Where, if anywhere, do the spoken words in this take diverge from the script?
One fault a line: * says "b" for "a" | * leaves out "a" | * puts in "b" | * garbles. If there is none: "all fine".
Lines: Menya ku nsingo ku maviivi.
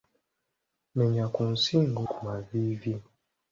all fine